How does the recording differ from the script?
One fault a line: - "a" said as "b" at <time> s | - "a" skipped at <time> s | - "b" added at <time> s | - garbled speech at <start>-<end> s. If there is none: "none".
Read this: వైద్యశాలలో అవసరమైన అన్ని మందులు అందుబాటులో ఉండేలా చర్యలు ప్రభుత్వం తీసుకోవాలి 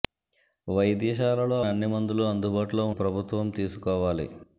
- "అవసరమైన" skipped at 1.6 s
- "ఉండేలా చర్యలు" skipped at 2.9 s